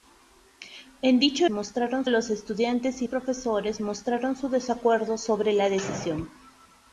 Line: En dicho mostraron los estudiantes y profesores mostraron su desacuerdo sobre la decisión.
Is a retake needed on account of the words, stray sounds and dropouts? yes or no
no